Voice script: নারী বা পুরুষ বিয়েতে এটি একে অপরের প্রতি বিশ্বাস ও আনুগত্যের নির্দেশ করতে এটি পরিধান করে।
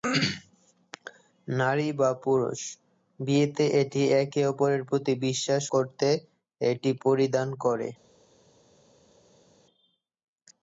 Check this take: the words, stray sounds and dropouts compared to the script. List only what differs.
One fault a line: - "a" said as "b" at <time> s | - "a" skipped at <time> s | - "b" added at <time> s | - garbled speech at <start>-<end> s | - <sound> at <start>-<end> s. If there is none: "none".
- "ও আনুগত্যের নির্দেশ" skipped at 5.6 s